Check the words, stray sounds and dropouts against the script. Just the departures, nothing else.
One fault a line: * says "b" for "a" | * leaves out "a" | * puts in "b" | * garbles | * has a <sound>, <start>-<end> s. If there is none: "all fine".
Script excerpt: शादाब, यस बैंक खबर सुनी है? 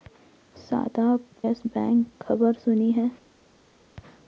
all fine